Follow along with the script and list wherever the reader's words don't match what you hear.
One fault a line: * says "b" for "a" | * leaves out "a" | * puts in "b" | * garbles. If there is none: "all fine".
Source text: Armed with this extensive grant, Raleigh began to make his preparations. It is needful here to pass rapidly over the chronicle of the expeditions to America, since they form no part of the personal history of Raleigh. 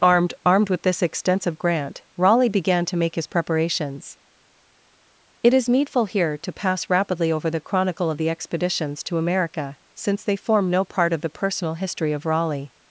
* puts in "armed"